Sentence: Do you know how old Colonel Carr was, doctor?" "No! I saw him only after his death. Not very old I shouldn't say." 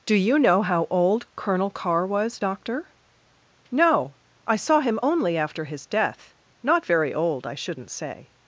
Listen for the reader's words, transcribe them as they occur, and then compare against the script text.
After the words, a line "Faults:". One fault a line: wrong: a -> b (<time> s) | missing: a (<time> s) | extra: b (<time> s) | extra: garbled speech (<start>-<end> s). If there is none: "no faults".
Do you know how old Colonel Carr was, doctor?" "No! I saw him only after his death. Not very old I shouldn't say."
Faults:
no faults